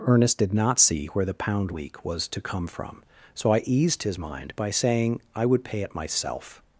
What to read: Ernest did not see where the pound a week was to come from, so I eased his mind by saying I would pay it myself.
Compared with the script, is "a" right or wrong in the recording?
wrong